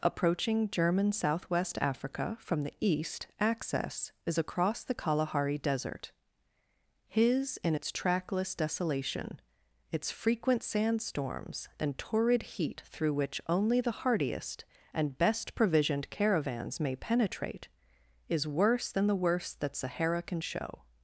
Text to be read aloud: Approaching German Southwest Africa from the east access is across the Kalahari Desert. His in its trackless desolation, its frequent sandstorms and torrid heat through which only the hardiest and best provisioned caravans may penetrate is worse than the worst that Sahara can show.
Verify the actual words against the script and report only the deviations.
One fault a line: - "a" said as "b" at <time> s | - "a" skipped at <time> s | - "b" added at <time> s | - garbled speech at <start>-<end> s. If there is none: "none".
none